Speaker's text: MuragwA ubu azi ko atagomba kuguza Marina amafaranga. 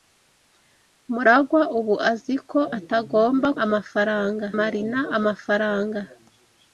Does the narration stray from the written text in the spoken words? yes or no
yes